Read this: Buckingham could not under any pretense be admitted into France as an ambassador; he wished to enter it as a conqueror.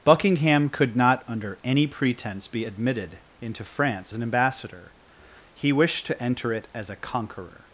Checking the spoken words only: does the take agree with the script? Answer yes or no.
no